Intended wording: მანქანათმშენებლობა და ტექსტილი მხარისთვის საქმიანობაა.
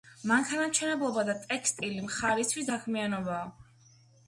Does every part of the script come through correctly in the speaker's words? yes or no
yes